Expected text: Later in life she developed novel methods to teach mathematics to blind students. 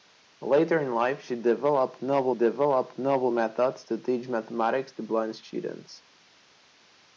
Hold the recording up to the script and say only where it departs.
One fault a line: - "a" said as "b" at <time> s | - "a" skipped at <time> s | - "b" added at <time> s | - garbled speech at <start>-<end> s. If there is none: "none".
- "developed novel" added at 2.3 s